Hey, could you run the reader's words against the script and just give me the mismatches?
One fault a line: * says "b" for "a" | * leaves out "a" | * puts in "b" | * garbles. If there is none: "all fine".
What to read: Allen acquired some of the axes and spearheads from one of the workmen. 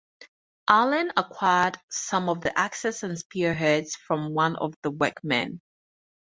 all fine